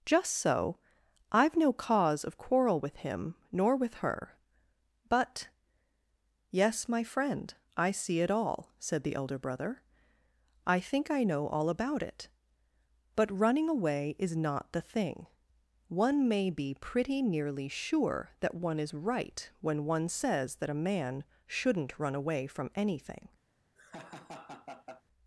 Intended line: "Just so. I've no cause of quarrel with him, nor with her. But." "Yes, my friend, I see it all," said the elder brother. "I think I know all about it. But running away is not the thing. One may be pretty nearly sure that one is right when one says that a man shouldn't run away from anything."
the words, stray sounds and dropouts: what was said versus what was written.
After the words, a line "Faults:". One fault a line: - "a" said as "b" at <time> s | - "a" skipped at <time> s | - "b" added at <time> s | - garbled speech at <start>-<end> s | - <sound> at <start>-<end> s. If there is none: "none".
"Just so. I've no cause of quarrel with him, nor with her. But." "Yes, my friend, I see it all," said the elder brother. "I think I know all about it. But running away is not the thing. One may be pretty nearly sure that one is right when one says that a man shouldn't run away from anything."
Faults:
- laugh at 23.7-25.0 s